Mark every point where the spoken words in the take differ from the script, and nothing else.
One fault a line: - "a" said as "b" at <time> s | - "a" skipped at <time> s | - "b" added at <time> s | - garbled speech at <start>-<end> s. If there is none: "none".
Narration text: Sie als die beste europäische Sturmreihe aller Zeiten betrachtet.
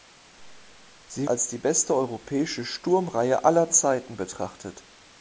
none